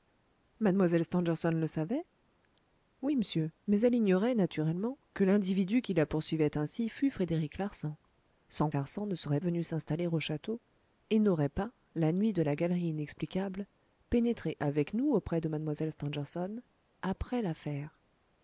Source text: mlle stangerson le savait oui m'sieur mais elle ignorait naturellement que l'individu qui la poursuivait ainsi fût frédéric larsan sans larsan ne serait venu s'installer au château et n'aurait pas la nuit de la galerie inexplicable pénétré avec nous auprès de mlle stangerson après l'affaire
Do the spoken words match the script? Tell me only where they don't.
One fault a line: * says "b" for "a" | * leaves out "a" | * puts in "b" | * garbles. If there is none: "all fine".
all fine